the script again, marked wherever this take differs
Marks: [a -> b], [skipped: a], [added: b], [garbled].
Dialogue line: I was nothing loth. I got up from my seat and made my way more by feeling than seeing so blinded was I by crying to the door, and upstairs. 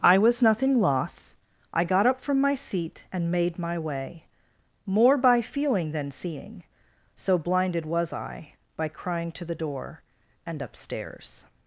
I was nothing loth. I got up from my seat and made my way more by feeling than seeing so blinded was I by crying to the door, and upstairs.